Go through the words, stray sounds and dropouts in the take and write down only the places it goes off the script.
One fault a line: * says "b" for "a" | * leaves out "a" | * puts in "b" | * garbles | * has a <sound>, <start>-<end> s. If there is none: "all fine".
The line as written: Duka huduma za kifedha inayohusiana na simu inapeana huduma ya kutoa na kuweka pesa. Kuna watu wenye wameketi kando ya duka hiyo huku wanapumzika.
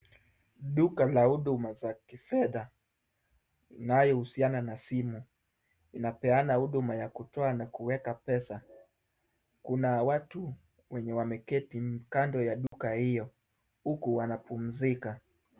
* puts in "la"
* has a dropout, 12.7-12.7 s